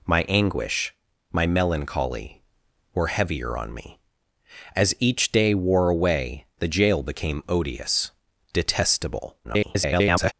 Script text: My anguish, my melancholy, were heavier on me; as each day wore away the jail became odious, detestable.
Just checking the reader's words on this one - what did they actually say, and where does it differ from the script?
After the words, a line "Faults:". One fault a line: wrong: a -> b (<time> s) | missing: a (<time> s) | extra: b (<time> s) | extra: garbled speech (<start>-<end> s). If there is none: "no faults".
My anguish, my melancholy, were heavier on me; as each day wore away the jail became odious, detestable. [garbled]
Faults:
extra: garbled speech (9.4-10.3 s)